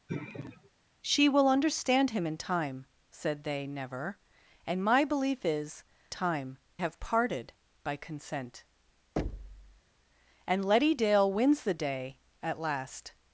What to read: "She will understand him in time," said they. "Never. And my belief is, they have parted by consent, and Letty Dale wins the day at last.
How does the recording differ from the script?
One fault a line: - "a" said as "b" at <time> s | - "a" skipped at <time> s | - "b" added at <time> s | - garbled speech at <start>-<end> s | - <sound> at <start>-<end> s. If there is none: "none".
- sigh at 0.1-0.7 s
- "they" said as "time" at 6.1 s
- thud at 9.2-9.8 s